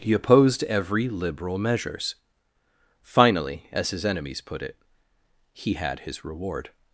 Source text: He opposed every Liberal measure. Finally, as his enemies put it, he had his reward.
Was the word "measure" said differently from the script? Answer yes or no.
yes